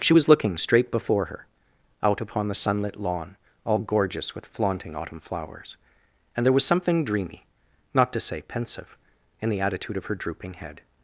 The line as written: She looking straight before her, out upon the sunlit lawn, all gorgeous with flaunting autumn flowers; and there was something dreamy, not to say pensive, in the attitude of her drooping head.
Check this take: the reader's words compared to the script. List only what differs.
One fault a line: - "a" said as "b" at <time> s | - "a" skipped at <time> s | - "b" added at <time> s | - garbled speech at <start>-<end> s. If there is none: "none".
- "was" added at 0.1 s